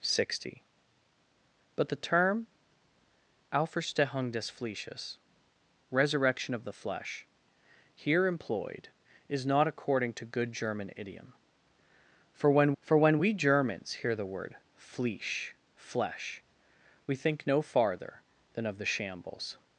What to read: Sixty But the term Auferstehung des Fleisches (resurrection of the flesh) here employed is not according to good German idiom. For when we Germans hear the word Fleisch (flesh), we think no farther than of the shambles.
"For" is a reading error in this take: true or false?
false